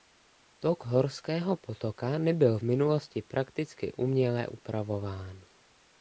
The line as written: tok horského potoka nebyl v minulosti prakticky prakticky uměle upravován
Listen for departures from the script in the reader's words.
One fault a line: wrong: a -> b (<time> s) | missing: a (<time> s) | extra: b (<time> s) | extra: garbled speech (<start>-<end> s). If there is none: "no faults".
missing: prakticky (3.9 s)